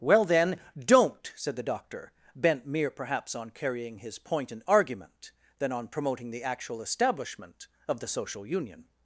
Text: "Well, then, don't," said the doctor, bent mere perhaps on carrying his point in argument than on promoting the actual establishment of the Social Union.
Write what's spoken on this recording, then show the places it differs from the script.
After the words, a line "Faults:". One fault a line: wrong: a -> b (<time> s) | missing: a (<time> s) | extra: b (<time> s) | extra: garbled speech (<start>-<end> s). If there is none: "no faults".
"Well, then, don't," said the doctor, bent mere perhaps on carrying his point in argument than on promoting the actual establishment of the Social Union.
Faults:
no faults